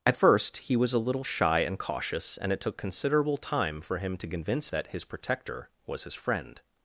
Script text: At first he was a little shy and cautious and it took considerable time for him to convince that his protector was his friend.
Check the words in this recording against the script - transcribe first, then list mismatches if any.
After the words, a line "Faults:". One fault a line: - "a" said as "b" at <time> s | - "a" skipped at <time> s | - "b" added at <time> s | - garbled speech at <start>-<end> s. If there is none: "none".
At first he was a little shy and cautious and it took considerable time for him to convince that his protector was his friend.
Faults:
none